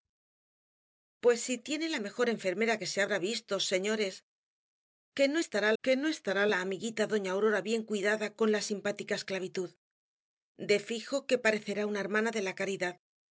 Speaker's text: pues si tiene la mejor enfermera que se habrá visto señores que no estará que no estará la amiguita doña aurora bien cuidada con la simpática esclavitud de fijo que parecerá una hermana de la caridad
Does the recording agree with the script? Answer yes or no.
yes